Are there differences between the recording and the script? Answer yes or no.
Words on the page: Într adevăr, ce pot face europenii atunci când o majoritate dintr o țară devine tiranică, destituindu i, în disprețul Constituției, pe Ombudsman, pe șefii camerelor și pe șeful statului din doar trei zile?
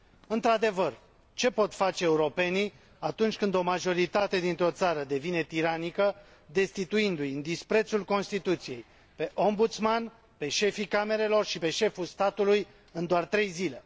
yes